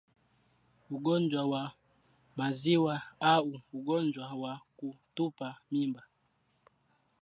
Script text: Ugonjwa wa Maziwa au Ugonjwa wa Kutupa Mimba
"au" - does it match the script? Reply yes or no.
yes